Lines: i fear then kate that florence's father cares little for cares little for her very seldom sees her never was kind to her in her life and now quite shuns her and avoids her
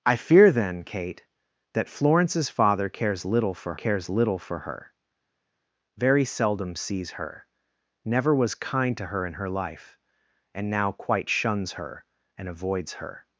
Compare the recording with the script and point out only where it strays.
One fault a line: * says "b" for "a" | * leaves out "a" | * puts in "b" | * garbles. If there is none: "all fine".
all fine